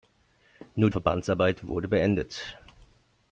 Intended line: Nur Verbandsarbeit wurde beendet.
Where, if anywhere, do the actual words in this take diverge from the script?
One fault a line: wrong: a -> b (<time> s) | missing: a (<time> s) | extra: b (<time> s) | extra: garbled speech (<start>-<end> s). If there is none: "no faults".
no faults